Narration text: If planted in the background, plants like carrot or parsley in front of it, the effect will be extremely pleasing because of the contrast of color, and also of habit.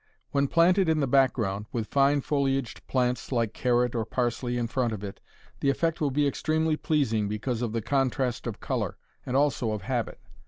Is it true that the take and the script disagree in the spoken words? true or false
true